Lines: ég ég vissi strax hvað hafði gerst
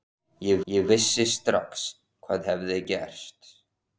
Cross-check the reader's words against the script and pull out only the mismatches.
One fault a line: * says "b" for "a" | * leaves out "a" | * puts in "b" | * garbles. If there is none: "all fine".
all fine